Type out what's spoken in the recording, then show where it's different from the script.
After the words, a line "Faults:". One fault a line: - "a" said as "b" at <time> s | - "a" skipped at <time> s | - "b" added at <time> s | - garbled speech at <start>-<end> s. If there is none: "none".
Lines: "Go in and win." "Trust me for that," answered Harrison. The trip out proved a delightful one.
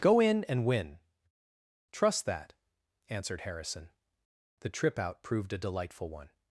"Go in and win." "Trust that," answered Harrison. The trip out proved a delightful one.
Faults:
- "me for" skipped at 2.2 s